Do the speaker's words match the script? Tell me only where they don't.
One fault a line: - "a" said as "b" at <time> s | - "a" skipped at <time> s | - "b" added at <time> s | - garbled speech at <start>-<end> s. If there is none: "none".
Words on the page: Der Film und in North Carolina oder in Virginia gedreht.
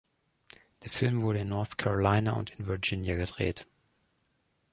- "und" said as "wurde" at 1.2 s
- "oder" said as "und" at 2.3 s